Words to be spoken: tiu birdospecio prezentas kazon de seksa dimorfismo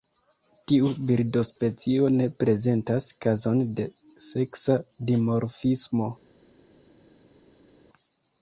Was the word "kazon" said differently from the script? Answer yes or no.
no